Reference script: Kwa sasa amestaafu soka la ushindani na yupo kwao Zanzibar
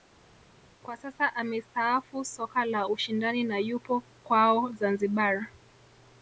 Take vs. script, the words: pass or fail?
pass